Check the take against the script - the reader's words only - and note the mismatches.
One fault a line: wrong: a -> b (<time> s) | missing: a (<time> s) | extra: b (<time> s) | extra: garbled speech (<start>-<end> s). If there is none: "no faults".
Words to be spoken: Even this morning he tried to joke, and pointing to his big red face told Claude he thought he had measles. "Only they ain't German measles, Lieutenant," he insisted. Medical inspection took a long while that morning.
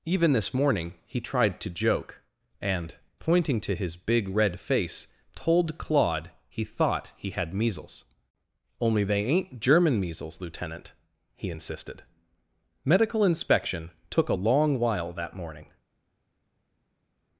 no faults